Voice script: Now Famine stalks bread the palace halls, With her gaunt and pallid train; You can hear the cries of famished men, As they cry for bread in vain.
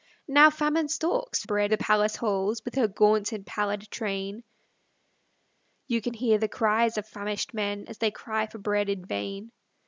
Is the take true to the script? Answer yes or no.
yes